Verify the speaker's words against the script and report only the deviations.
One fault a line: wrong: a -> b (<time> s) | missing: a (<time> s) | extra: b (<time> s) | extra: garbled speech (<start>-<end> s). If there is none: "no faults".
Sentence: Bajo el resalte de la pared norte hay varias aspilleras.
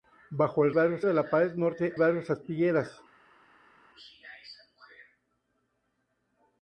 wrong: resalte -> varias (0.7 s)
missing: hay (1.9 s)